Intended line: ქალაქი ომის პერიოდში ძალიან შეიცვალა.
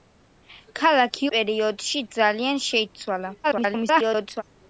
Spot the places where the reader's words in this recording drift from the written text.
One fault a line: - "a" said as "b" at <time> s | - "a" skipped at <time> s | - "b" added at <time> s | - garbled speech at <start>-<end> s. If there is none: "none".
- "ომის" skipped at 1.3 s
- garbled speech at 3.4-4.4 s